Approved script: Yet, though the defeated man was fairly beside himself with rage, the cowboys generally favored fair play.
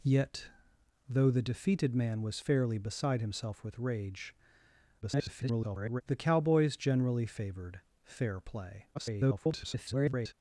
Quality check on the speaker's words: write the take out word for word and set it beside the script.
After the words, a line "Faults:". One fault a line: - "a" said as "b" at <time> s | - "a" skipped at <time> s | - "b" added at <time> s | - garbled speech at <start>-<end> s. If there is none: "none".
Yet, though the defeated man was fairly beside himself with rage, [garbled] the cowboys generally favored fair play. [garbled]
Faults:
- garbled speech at 5.0-6.0 s
- garbled speech at 8.9-10.3 s